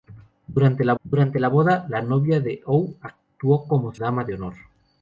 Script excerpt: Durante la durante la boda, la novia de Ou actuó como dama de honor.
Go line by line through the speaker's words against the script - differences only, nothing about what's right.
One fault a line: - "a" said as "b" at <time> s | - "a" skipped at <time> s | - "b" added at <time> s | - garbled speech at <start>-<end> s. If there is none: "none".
none